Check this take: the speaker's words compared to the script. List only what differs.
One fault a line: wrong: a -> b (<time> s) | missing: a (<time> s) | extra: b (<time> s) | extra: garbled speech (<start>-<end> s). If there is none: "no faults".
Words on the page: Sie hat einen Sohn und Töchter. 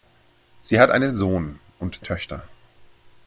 no faults